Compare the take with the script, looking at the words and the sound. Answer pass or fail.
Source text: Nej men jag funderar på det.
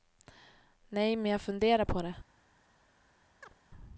fail